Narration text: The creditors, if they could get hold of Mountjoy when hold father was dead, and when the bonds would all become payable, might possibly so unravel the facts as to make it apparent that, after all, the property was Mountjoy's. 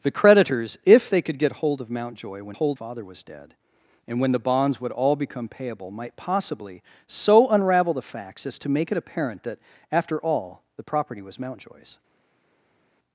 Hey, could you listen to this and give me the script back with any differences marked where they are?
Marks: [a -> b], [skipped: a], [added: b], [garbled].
The creditors, if they could get hold of Mountjoy when hold father was dead, and when the bonds would all become payable, might possibly so unravel the facts as to make it apparent that, after all, the property was Mountjoy's.